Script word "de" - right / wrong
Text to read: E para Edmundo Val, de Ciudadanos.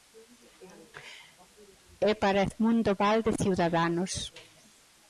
right